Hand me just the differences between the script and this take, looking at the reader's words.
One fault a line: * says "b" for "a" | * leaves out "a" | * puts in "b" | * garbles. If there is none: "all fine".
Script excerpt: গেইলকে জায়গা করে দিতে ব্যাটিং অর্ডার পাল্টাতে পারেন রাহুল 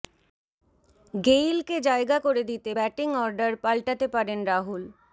all fine